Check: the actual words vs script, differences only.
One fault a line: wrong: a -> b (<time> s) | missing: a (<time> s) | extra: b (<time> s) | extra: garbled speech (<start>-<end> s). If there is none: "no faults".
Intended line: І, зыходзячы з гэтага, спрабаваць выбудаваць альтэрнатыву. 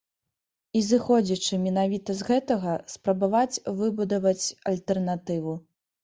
extra: менавіта (1.6 s)